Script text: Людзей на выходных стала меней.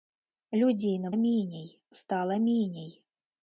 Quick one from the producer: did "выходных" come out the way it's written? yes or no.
no